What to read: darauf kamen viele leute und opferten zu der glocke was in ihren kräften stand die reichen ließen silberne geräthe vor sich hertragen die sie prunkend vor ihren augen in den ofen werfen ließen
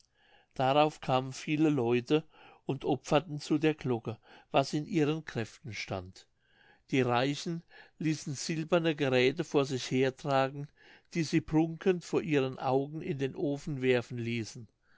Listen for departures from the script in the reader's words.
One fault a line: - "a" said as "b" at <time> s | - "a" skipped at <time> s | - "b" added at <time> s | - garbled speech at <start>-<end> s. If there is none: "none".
none